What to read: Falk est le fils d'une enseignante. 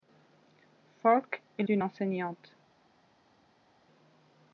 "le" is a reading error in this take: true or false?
true